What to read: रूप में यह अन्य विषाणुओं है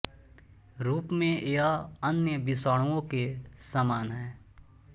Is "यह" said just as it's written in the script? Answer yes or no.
yes